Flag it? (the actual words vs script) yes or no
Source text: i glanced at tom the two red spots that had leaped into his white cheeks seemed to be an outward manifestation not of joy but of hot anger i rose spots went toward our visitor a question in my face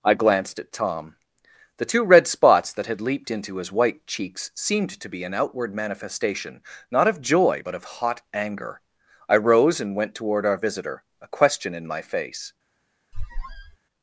yes